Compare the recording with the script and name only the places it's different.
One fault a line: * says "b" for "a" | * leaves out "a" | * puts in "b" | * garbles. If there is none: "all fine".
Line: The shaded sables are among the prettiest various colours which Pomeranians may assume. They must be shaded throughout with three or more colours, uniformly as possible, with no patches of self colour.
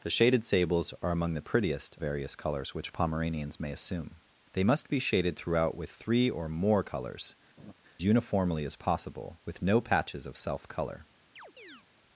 all fine